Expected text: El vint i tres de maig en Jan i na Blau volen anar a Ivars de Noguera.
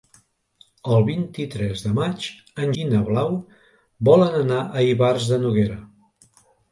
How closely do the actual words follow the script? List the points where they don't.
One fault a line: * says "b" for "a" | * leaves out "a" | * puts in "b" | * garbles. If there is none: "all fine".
* leaves out "Jan"